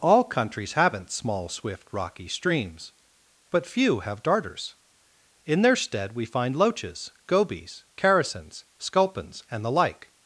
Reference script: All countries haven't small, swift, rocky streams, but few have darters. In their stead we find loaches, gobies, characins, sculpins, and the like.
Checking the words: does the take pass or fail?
pass